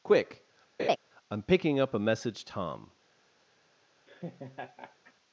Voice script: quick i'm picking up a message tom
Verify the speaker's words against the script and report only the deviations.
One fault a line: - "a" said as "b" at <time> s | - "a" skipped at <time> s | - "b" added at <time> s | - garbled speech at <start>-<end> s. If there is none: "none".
none